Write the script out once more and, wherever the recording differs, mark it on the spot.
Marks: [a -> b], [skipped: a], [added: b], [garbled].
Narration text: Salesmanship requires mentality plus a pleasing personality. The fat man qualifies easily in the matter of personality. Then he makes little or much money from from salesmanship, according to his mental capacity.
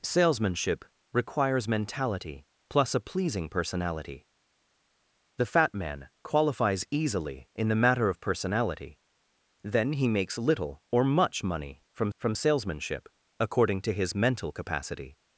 Salesmanship requires mentality plus a pleasing personality. The fat man qualifies easily in the matter of personality. Then he makes little or much money from from salesmanship, according to his mental capacity.